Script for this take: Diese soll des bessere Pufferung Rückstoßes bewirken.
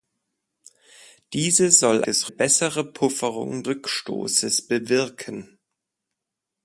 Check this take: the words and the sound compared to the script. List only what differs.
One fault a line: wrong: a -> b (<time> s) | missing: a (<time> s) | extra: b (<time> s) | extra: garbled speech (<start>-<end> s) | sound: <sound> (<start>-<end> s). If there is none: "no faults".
no faults